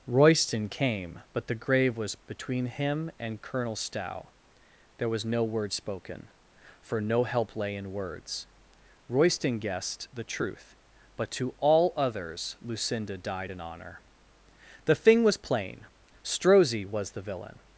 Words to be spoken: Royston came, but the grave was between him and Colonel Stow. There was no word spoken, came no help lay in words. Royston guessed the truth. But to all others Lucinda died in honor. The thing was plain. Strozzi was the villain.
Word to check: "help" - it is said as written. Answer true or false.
true